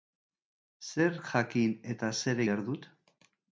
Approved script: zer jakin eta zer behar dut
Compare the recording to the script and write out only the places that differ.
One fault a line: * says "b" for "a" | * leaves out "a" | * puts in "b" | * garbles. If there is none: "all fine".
all fine